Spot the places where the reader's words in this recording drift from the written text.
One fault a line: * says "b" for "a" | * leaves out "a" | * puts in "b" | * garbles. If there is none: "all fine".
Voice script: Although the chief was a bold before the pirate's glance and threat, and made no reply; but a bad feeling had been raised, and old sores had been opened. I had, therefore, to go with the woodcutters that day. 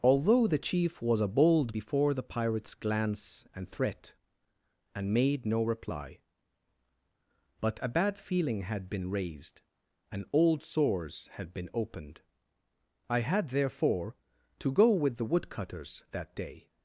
all fine